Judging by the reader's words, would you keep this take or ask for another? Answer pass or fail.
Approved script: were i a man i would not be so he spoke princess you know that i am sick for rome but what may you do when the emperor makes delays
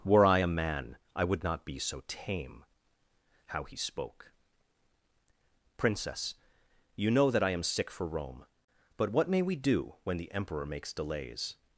fail